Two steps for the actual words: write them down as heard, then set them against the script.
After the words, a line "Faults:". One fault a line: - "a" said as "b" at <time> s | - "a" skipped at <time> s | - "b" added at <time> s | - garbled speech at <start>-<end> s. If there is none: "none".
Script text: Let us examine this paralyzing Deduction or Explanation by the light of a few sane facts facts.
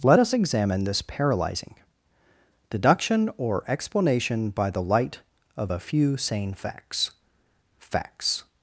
Let us examine this paralyzing Deduction or Explanation by the light of a few sane facts facts.
Faults:
none